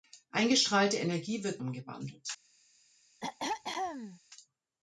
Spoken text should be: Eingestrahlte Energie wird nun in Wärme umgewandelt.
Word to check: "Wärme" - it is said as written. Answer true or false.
false